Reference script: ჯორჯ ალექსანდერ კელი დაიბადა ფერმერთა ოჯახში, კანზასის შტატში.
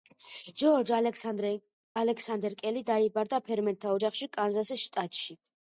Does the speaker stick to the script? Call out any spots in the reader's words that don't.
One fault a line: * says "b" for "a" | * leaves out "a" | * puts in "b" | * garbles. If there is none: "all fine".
all fine